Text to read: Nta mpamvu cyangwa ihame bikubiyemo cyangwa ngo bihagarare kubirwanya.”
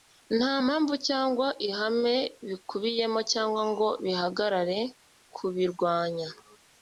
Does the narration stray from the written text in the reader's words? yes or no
no